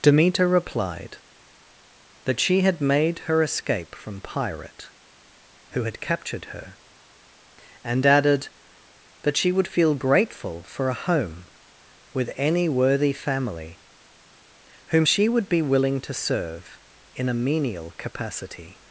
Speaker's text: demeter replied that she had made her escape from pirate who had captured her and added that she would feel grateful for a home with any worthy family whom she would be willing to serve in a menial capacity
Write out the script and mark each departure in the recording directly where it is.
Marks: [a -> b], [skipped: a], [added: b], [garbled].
demeter replied that she had made her escape from pirate who had captured her and added that she would feel grateful for a home with any worthy family whom she would be willing to serve in a menial capacity